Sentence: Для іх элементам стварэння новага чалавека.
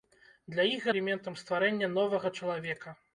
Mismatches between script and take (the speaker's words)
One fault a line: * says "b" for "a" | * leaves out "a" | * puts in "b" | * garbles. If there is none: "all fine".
all fine